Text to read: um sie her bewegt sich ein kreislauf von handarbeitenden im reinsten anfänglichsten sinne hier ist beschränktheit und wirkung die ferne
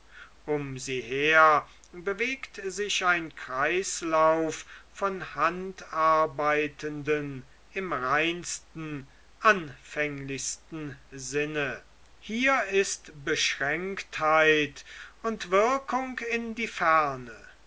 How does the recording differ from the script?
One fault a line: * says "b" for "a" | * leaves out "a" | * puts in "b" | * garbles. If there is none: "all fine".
* puts in "in"